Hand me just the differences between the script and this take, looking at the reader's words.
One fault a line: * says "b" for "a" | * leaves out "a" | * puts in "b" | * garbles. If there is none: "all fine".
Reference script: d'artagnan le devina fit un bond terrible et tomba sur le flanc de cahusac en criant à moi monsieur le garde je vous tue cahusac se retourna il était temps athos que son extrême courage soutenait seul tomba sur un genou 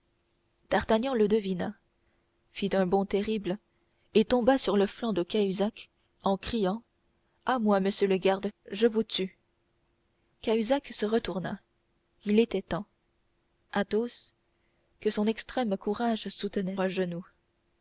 * leaves out "seul tomba sur"